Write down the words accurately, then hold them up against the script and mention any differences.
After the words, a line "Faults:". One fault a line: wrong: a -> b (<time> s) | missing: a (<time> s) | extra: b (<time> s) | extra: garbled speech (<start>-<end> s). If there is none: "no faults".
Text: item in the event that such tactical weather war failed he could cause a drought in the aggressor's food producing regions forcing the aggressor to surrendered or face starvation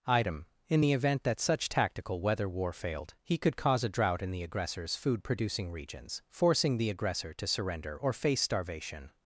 item in the event that such tactical weather war failed he could cause a drought in the aggressor's food producing regions forcing the aggressor to surrender or face starvation
Faults:
wrong: surrendered -> surrender (7.5 s)